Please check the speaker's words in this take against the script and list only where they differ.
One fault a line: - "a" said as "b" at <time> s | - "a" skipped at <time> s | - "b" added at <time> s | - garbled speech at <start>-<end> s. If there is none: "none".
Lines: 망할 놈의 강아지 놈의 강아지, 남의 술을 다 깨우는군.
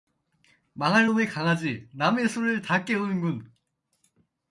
- "놈의 강아지" skipped at 1.9 s